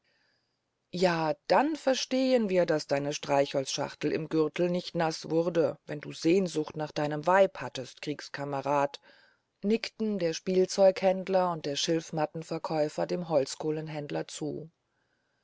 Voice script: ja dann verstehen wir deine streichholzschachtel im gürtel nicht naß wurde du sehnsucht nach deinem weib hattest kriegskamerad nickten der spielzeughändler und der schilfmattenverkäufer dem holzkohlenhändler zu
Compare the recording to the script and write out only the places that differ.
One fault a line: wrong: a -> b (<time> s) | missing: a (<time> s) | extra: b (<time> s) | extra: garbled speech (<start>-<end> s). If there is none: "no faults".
extra: daß (2.6 s)
extra: wenn (5.8 s)